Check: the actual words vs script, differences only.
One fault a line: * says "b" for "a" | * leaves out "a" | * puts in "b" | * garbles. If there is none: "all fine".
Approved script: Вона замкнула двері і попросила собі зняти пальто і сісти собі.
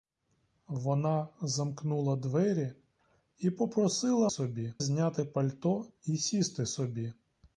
all fine